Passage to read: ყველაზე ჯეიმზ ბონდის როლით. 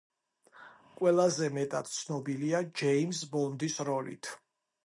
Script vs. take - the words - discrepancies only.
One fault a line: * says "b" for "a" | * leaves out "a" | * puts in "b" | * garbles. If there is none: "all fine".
* puts in "მეტად ცნობილია"